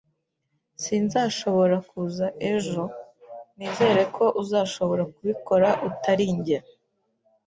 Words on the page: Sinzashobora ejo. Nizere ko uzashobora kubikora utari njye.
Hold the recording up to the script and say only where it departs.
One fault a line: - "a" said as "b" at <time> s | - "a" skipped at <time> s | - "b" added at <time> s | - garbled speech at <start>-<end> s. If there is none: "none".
- "kuza" added at 1.9 s